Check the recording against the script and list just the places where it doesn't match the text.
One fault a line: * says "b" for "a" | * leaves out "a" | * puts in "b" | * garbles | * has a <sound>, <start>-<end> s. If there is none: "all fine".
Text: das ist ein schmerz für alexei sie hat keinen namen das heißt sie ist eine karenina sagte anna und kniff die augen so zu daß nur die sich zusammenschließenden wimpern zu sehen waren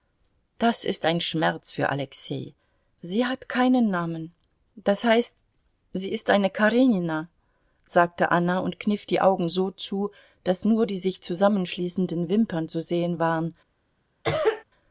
* has a cough, 14.2-14.6 s